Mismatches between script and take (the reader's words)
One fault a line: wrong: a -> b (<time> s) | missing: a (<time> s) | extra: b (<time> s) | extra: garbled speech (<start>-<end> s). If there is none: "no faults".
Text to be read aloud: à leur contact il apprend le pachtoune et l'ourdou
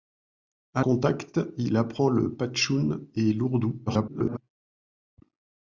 missing: leur (0.8 s)
extra: garbled speech (3.9-4.4 s)